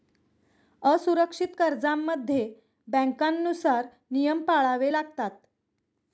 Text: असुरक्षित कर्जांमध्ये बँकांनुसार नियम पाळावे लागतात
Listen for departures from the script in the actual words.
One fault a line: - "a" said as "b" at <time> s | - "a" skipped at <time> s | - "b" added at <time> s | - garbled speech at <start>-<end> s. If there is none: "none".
none